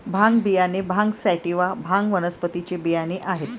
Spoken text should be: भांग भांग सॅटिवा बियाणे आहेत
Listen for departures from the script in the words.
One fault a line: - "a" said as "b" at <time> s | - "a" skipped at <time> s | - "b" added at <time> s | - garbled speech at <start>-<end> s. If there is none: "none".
- "बियाणे" added at 0.4 s
- "भांग वनस्पतीचे" added at 1.7 s